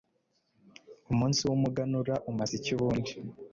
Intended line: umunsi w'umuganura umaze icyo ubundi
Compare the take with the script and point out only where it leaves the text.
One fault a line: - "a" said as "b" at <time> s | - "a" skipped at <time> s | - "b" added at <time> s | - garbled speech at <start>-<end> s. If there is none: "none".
- "icyo" said as "iki" at 2.6 s